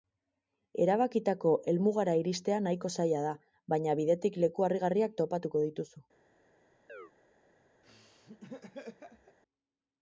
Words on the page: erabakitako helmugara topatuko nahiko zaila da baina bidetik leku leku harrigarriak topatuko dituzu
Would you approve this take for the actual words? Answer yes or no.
no